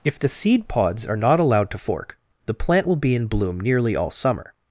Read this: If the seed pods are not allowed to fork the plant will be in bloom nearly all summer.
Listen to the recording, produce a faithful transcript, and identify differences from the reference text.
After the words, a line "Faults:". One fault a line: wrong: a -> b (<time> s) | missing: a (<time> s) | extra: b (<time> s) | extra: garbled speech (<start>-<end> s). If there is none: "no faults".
If the seed pods are not allowed to fork the plant will be in bloom nearly all summer.
Faults:
no faults